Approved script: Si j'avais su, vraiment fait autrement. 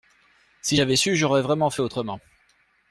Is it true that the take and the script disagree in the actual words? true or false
true